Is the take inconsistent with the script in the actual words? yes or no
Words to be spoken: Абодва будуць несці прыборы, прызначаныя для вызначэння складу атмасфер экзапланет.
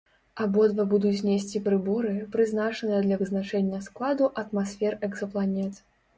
no